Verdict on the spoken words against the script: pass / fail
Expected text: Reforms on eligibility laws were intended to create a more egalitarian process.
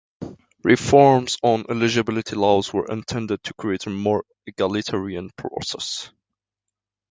pass